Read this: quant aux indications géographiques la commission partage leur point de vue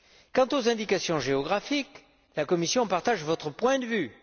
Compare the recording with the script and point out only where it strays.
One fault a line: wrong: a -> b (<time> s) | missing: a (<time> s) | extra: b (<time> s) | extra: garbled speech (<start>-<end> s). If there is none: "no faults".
wrong: leur -> votre (3.2 s)